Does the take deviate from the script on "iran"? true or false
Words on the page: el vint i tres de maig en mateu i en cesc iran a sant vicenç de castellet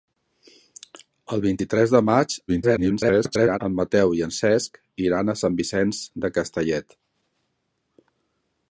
false